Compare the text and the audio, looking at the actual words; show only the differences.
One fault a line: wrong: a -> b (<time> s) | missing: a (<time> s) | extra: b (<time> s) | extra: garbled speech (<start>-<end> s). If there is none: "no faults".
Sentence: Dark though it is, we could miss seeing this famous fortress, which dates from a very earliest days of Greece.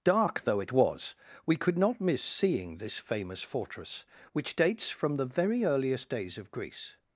wrong: is -> was (0.7 s)
extra: not (1.8 s)
wrong: a -> the (5.2 s)